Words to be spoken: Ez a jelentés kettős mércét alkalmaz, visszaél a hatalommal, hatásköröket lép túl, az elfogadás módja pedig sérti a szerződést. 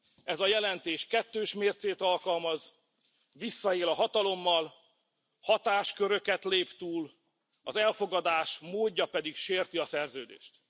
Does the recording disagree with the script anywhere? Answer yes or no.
no